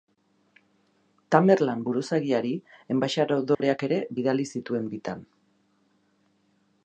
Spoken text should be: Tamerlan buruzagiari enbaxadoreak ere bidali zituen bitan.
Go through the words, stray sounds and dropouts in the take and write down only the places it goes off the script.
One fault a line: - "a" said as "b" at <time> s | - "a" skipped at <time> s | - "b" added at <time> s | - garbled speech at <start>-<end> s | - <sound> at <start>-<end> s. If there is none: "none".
- dropout at 3.5-3.6 s